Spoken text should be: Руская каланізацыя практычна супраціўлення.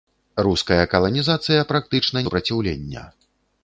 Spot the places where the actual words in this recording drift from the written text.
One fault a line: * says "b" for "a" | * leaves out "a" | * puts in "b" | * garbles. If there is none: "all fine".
all fine